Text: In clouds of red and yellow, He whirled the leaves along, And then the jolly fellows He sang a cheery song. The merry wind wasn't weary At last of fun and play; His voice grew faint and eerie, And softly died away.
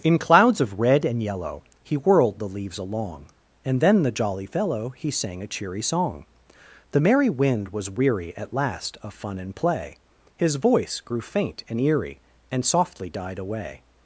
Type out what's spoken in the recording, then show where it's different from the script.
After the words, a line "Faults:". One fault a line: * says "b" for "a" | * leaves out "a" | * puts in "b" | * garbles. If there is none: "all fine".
In clouds of red and yellow, He whirled the leaves along, And then the jolly fellow He sang a cheery song. The merry wind was weary At last of fun and play; His voice grew faint and eerie, And softly died away.
Faults:
* says "fellow" for "fellows"
* says "was" for "wasn't"